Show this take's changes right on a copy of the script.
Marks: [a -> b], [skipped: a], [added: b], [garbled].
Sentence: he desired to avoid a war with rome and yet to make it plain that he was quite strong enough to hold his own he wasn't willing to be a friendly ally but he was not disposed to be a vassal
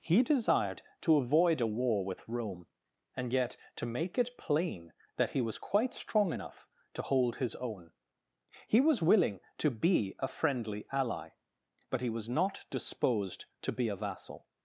he desired to avoid a war with rome and yet to make it plain that he was quite strong enough to hold his own he [wasn't -> was] willing to be a friendly ally but he was not disposed to be a vassal